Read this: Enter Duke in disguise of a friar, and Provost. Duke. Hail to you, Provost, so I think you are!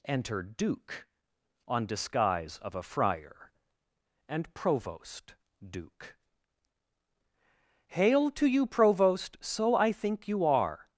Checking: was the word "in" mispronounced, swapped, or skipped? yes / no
yes